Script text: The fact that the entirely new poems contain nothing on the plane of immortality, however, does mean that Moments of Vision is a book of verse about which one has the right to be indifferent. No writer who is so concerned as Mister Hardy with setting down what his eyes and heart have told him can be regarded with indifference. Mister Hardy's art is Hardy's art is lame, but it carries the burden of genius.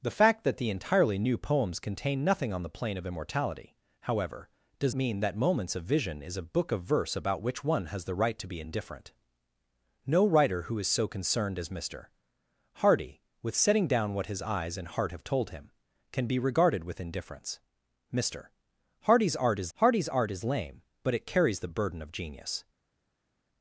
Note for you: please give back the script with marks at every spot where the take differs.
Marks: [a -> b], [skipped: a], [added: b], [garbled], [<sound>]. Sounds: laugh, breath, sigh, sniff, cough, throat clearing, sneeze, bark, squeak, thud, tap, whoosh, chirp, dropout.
The fact that the entirely new poems contain nothing on the plane of immortality, however, does mean that Moments of Vision is a book of verse about which one has the right to be indifferent. No writer who is so concerned as Mister Hardy with setting down what his eyes and heart have told him can be regarded with indifference. Mister Hardy's art is Hardy's art is lame, but it carries the burden of genius.